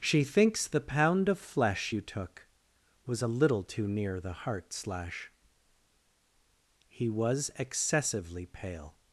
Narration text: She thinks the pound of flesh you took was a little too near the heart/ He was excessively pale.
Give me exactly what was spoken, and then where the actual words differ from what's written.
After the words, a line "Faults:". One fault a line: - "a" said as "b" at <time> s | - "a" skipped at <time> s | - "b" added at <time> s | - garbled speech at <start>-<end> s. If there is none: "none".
She thinks the pound of flesh you took was a little too near the heart/ slash He was excessively pale.
Faults:
- "slash" added at 4.7 s